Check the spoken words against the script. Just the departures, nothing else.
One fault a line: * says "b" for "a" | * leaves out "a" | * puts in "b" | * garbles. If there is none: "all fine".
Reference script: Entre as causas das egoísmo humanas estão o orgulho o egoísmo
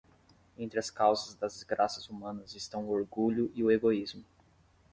* says "desgraças" for "egoísmo"
* puts in "e"